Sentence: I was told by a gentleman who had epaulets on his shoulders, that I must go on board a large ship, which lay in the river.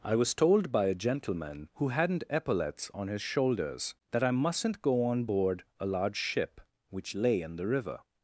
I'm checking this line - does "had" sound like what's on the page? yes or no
no